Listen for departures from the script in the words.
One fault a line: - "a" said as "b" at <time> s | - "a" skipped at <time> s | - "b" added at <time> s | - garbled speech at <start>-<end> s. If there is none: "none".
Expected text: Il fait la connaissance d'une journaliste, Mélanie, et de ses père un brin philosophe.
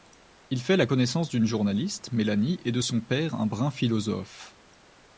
- "ses" said as "son" at 2.8 s